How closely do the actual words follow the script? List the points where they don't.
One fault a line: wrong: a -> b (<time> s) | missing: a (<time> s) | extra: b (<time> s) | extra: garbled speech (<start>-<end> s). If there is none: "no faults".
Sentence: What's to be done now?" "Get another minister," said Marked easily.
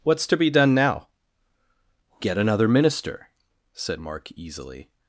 wrong: Marked -> Mark (4.0 s)